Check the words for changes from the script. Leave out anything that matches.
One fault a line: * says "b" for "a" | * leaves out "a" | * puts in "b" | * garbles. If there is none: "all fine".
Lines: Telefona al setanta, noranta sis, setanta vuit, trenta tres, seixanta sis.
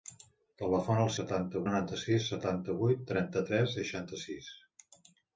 all fine